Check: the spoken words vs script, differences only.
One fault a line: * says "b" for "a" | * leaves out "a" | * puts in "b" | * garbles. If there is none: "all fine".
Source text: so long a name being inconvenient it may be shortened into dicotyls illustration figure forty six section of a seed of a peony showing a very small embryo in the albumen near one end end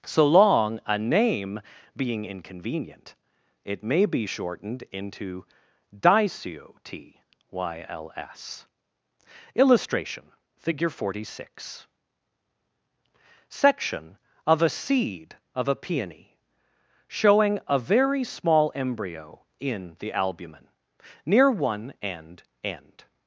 all fine